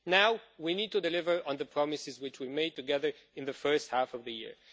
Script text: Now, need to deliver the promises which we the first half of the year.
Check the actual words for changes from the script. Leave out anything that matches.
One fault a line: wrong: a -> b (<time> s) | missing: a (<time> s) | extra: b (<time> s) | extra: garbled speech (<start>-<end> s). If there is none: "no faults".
extra: we (0.6 s)
extra: on (1.4 s)
extra: made together in (2.5 s)